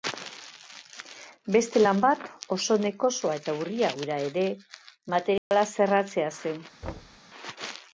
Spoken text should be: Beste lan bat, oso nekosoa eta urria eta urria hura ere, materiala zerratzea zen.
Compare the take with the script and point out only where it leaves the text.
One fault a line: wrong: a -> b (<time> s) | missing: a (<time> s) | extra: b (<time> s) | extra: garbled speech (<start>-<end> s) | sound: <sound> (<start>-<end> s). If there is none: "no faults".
missing: eta urria (3.9 s)
sound: dropout (5.4-5.5 s)
sound: thud (6.8-7.2 s)